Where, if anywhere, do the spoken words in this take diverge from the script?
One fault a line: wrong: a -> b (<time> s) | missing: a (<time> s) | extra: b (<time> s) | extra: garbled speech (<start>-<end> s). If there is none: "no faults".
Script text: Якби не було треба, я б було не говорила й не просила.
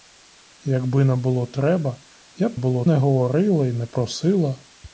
no faults